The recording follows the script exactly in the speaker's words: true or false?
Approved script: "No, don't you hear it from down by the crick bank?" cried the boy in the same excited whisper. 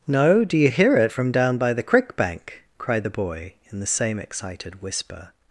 false